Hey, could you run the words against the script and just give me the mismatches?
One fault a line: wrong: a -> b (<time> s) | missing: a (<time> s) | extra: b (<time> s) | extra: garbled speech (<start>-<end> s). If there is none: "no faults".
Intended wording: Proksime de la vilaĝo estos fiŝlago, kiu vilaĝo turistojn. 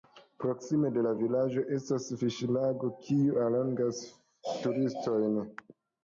wrong: estos -> estas (1.8 s)
wrong: vilaĝo -> allogas (3.4 s)